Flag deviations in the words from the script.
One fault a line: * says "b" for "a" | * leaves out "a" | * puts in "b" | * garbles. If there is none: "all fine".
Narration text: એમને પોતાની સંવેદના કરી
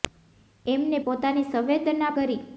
all fine